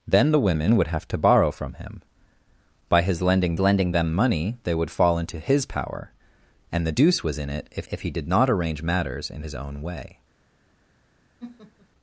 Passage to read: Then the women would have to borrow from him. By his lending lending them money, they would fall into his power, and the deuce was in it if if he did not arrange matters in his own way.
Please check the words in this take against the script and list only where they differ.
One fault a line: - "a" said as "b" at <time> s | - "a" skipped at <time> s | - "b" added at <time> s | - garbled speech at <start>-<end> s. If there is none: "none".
none